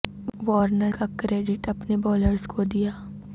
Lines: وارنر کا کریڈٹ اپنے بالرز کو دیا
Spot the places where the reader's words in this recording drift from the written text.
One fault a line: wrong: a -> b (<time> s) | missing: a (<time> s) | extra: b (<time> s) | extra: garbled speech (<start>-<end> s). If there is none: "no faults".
no faults